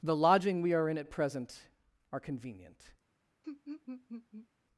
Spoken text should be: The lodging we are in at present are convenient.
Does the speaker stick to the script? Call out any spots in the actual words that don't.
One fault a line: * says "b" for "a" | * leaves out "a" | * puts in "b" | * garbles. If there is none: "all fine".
all fine